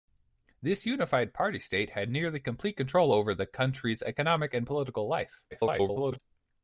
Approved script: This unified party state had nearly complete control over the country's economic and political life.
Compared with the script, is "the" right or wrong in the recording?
right